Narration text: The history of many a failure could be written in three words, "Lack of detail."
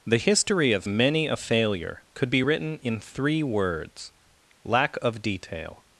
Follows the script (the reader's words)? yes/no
yes